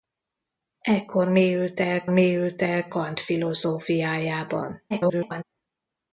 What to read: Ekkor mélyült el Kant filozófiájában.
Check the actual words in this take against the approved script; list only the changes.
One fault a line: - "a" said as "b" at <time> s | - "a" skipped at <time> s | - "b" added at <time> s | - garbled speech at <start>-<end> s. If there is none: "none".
- "mélyült el" added at 2.1 s
- garbled speech at 4.9-5.4 s